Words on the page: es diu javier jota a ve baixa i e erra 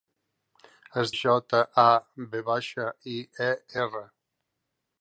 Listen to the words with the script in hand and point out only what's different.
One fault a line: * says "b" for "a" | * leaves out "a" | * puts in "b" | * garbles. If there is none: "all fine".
* leaves out "diu javier"